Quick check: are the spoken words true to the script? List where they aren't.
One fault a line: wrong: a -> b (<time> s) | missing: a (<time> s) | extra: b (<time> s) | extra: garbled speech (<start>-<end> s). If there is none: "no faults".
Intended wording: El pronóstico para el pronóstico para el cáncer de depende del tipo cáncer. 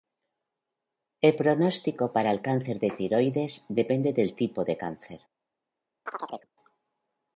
missing: pronóstico para el (2.4 s)
extra: tiroides (2.9 s)
extra: de (4.6 s)